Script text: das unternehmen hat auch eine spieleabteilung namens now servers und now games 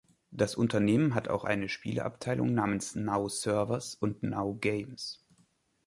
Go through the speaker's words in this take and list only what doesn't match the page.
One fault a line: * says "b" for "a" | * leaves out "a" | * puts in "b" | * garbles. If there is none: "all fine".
all fine